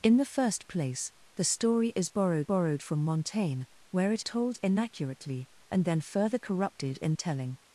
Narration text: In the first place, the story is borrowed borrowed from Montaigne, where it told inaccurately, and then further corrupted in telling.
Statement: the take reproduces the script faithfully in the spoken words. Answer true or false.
true